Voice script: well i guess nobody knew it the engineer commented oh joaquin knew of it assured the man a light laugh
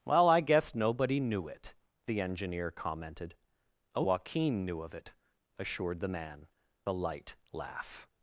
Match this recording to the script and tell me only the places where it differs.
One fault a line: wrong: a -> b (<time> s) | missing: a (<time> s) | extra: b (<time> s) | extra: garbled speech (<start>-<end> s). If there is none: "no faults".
no faults